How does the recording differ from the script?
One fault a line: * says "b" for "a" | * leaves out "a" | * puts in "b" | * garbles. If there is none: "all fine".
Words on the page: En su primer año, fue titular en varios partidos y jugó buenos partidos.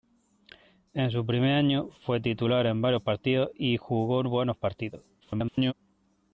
* garbles